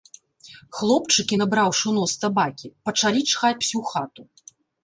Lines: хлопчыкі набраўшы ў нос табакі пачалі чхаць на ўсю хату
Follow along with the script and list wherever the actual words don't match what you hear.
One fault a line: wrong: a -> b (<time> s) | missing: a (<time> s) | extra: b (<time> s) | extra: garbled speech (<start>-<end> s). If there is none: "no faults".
missing: на (3.6 s)